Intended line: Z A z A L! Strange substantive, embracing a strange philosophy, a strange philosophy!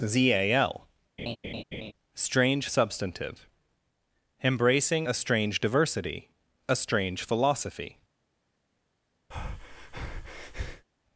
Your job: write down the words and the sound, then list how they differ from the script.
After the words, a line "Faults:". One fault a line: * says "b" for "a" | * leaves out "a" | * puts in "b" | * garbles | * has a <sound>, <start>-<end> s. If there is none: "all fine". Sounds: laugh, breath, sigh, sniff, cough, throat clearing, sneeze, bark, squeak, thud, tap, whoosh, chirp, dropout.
Z A L! Strange substantive, embracing a strange diversity, a strange philosophy!
Faults:
* leaves out "z A"
* has a laugh, 1.2-1.9 s
* says "diversity" for "philosophy"
* has a breath, 9.3-10.9 s